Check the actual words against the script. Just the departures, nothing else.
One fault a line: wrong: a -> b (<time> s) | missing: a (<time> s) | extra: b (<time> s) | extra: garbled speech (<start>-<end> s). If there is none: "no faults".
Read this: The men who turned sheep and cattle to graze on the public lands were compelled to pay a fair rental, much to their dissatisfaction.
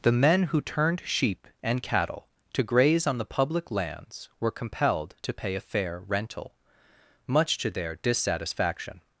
no faults